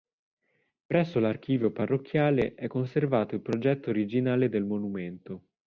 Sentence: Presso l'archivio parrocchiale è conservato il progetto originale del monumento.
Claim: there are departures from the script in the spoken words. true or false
false